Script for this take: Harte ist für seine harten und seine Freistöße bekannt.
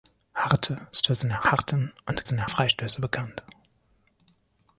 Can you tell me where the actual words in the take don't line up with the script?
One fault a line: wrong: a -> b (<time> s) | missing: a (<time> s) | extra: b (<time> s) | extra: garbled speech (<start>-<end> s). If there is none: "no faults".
no faults